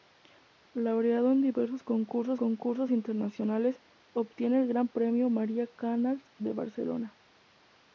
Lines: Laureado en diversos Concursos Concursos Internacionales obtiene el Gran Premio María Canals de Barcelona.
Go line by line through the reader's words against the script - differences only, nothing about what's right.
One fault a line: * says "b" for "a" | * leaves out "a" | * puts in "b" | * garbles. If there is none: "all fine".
all fine